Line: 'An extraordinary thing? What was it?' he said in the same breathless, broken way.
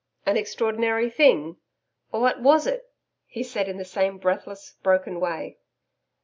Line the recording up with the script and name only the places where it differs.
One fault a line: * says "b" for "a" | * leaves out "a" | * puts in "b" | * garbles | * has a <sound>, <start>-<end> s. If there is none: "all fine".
all fine